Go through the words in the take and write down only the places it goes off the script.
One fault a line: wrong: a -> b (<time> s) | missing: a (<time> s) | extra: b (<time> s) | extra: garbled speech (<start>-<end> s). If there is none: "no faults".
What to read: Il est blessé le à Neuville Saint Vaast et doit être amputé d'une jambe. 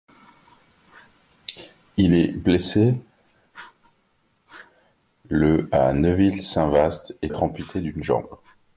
missing: doit (7.3 s)